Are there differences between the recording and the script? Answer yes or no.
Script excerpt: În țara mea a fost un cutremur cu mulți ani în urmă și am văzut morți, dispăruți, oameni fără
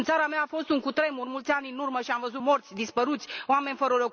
no